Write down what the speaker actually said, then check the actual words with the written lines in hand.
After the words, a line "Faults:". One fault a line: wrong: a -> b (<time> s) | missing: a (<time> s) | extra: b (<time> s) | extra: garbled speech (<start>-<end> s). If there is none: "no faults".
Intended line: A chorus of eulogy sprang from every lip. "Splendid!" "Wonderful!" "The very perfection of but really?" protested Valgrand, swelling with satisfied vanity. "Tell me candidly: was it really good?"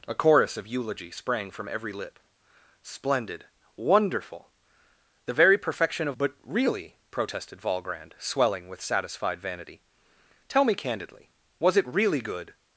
A chorus of eulogy sprang from every lip. "Splendid!" "Wonderful!" "The very perfection of but really?" protested Valgrand, swelling with satisfied vanity. "Tell me candidly: was it really good?"
Faults:
no faults